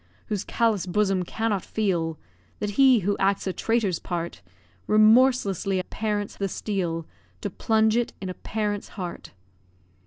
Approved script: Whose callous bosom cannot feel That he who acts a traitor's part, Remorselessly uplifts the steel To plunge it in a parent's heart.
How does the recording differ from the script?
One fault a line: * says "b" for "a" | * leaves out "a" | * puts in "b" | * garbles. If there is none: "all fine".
* says "parent's" for "uplifts"